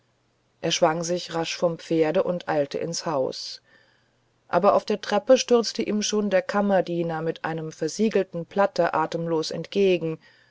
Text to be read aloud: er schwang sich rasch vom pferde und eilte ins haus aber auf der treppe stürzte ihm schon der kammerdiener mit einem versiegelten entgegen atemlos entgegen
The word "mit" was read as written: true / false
true